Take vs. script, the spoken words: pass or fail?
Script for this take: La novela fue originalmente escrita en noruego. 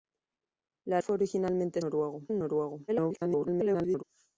fail